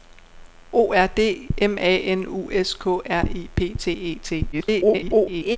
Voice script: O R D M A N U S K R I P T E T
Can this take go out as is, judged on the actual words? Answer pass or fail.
fail